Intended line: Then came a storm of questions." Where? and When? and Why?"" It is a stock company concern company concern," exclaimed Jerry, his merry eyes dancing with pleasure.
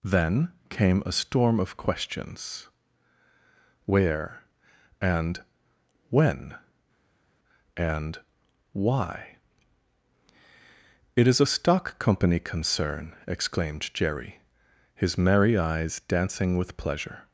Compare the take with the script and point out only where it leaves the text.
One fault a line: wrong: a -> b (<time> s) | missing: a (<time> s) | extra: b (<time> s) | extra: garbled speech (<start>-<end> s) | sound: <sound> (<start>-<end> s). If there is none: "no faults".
missing: company concern (13.1 s)